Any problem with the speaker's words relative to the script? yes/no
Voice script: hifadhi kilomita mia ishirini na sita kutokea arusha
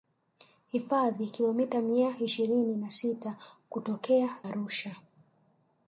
no